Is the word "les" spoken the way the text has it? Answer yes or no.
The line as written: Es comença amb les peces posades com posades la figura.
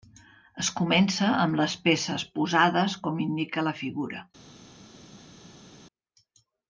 yes